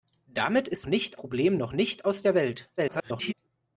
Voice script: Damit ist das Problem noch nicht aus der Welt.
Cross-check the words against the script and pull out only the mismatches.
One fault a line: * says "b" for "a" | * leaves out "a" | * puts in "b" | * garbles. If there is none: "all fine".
* says "nicht" for "das"
* garbles